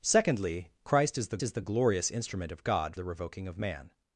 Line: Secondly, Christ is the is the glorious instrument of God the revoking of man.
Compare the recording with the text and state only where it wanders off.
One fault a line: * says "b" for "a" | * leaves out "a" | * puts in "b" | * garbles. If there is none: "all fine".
all fine